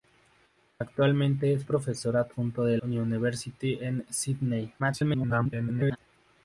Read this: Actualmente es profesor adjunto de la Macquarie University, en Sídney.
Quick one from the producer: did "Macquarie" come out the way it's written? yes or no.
no